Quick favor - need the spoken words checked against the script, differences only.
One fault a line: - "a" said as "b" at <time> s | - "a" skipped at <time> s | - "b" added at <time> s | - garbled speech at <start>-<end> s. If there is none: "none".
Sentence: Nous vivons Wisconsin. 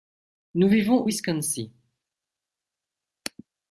none